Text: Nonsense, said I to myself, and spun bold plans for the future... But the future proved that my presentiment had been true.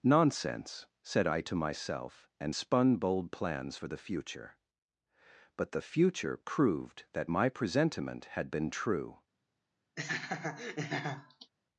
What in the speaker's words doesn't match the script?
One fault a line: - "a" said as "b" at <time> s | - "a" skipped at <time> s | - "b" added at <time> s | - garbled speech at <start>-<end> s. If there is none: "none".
none